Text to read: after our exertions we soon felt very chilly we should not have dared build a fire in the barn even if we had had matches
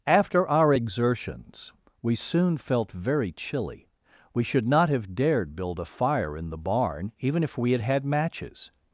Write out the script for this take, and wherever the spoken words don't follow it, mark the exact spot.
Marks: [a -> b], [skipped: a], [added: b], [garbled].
after our exertions we soon felt very chilly we should not have dared build a fire in the barn even if we had had matches